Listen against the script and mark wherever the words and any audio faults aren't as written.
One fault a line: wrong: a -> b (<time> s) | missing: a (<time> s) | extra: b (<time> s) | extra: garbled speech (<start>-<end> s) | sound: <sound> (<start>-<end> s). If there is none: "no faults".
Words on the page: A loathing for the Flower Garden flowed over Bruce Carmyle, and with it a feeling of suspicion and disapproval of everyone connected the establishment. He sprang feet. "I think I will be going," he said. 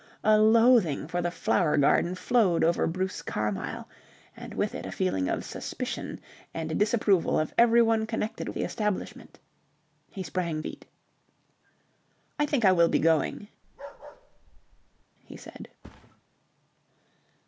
sound: bark (13.6-15.0 s)
sound: thud (15.8-16.2 s)